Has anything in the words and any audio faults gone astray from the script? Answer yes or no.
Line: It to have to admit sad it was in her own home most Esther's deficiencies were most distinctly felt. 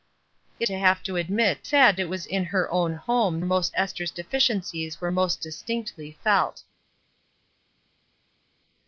no